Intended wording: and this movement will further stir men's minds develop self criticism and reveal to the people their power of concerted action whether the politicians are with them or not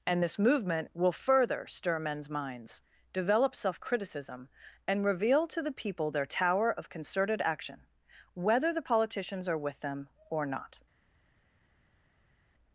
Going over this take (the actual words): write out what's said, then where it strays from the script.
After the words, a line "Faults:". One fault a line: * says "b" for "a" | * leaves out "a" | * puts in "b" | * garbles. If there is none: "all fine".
and this movement will further stir men's minds develop self criticism and reveal to the people their tower of concerted action whether the politicians are with them or not
Faults:
* says "tower" for "power"